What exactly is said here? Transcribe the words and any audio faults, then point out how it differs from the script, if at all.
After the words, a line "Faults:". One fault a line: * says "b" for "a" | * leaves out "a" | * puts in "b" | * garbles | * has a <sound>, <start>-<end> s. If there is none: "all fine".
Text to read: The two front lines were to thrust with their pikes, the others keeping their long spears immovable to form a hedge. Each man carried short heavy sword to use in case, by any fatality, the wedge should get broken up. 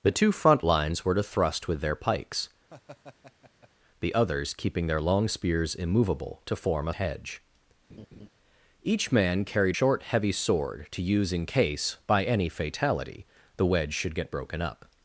The two front lines were to thrust with their pikes, the others keeping their long spears immovable to form a hedge. Each man carried short heavy sword to use in case, by any fatality, the wedge should get broken up.
Faults:
* has a laugh, 2.7-3.7 s
* has a laugh, 7.9-8.3 s